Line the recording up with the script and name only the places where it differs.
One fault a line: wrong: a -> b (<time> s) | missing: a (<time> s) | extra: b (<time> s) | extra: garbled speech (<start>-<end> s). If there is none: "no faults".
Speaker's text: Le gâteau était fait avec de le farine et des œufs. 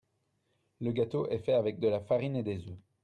wrong: était -> est (1.3 s)
wrong: le -> la (1.9 s)